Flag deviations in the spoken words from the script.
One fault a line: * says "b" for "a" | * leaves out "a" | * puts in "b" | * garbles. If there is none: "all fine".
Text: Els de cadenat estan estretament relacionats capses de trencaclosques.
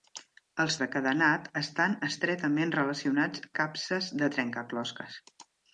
all fine